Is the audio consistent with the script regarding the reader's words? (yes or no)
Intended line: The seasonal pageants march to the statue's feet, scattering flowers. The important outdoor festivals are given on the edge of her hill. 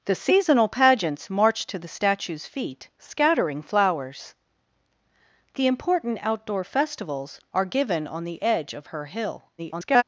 no